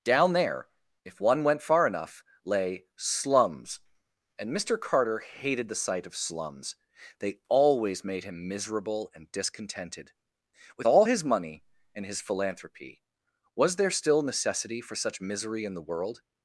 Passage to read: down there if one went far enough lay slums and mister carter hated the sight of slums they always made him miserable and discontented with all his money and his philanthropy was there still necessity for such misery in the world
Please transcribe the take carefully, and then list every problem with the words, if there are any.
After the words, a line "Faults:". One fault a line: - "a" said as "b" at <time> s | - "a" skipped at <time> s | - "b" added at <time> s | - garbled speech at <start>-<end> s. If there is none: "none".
down there if one went far enough lay slums and mister carter hated the sight of slums they always made him miserable and discontented with all his money and his philanthropy was there still necessity for such misery in the world
Faults:
none